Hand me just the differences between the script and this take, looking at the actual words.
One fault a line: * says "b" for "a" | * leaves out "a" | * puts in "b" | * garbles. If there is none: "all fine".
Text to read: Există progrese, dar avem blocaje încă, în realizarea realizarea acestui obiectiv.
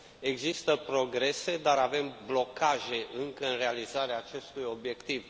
* leaves out "realizarea"